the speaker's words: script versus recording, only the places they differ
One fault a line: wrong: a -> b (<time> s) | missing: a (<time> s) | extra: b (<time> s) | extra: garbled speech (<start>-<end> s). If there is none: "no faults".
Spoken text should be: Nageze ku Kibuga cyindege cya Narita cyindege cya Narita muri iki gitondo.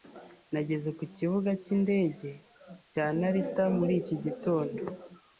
missing: cyindege cya Narita (3.6 s)